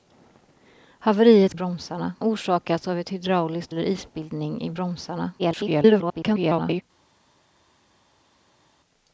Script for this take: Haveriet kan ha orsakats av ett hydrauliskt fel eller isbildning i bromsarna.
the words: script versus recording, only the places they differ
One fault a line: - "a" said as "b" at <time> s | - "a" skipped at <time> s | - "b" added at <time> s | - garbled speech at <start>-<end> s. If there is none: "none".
- "kan" said as "bromsarna" at 1.5 s
- "fel" skipped at 3.7 s
- garbled speech at 5.4-6.8 s